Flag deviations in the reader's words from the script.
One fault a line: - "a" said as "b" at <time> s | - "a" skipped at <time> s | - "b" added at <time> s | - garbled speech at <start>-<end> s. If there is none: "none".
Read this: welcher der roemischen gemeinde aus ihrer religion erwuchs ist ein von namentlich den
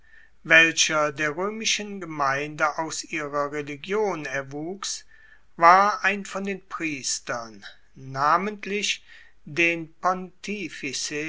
- "ist" said as "war" at 5.6 s
- "den priestern" added at 6.4 s